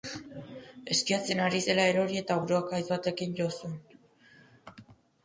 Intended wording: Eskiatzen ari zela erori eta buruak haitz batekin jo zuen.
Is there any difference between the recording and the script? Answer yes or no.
no